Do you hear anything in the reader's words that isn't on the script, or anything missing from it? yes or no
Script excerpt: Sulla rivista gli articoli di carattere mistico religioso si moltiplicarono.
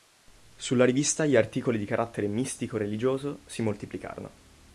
no